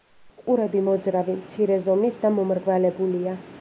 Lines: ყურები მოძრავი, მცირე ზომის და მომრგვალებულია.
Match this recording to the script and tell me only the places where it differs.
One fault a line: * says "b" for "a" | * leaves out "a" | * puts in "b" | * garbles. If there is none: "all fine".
all fine